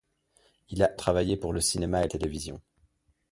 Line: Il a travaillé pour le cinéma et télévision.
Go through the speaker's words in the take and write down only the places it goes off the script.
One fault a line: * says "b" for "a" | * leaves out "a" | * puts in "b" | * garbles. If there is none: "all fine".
all fine